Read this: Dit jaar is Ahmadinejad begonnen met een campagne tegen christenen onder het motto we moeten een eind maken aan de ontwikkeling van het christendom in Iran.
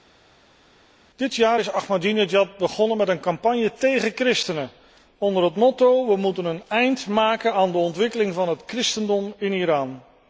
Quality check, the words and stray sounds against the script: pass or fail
pass